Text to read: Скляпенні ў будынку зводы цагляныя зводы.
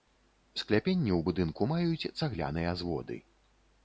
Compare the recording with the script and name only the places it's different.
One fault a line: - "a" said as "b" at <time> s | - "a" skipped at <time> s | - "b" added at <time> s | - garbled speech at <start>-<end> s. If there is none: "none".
- "зводы" said as "маюць" at 1.7 s